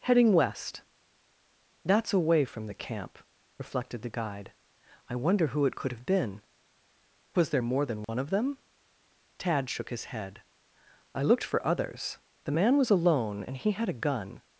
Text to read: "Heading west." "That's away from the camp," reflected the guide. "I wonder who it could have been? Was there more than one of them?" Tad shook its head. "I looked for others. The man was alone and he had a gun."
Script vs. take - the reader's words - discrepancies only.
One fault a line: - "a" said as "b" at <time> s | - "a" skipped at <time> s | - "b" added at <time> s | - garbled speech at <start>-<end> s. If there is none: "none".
- "its" said as "his" at 9.9 s